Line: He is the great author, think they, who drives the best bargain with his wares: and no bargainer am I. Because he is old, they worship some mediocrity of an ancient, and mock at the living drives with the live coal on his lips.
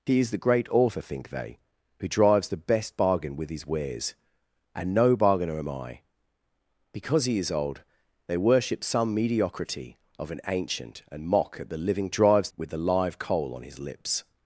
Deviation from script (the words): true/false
false